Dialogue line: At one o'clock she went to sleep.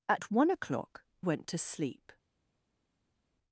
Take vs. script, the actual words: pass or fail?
fail